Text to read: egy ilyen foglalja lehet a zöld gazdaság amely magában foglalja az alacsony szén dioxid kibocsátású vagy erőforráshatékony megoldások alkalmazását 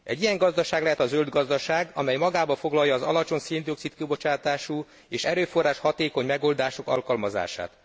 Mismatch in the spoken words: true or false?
true